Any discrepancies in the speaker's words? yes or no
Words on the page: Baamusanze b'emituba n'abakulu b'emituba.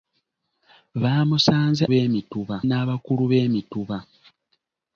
no